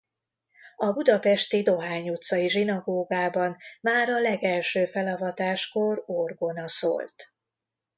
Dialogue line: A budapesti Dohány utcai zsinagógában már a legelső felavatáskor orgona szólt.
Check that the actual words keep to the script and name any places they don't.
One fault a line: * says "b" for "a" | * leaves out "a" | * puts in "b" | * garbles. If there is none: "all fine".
all fine